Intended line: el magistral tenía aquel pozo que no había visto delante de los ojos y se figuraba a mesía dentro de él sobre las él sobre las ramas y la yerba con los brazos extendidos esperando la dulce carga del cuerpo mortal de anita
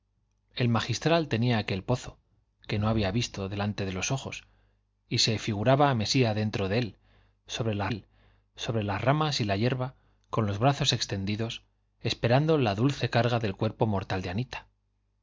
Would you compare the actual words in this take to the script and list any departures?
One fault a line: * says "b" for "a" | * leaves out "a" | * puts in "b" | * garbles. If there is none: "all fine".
all fine